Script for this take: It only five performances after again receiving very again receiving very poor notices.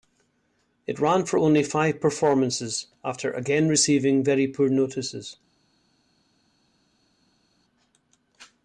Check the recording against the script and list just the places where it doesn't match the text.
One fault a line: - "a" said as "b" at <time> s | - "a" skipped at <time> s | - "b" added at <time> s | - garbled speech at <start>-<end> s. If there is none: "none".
- "ran for" added at 1.0 s
- "again receiving very" skipped at 4.5 s